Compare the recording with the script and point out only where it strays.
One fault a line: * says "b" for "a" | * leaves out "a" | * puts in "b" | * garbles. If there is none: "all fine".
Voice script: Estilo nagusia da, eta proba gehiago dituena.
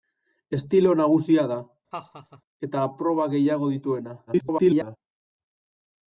* garbles